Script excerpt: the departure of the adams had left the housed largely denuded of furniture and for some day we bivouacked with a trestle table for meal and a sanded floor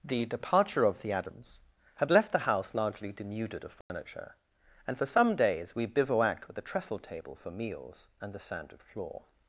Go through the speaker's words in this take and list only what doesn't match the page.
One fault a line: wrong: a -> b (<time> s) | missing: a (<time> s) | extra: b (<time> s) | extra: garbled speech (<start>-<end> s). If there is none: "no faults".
wrong: housed -> house (2.5 s)
wrong: day -> days (5.4 s)
wrong: meal -> meals (7.5 s)